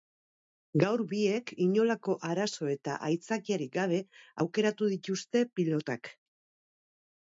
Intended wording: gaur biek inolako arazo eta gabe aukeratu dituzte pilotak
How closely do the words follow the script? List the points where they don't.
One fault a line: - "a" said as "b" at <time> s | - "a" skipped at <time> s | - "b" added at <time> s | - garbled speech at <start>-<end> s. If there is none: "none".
- "aitzakiarik" added at 3.1 s